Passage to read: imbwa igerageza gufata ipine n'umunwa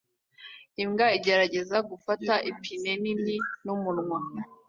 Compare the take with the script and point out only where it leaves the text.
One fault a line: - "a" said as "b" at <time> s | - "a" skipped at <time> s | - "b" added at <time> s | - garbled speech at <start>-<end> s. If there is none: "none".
- "nini" added at 3.0 s